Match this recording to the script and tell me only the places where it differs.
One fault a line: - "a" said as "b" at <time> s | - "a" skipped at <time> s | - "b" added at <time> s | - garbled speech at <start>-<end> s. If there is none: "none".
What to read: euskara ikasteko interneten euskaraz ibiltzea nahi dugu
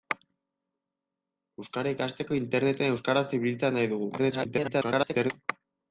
- garbled speech at 4.2-5.3 s